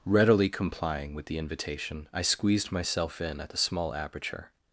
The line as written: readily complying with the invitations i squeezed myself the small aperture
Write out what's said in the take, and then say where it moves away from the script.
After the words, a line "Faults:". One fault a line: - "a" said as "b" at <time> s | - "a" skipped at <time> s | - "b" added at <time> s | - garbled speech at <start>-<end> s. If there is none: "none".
readily complying with the invitation i squeezed myself in at the small aperture
Faults:
- "invitations" said as "invitation" at 1.4 s
- "in at" added at 3.2 s